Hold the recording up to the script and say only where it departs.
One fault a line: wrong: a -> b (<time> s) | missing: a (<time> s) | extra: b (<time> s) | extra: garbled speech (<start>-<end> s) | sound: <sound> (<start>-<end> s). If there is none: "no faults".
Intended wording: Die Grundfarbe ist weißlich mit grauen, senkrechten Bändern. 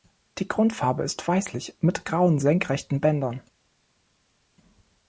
no faults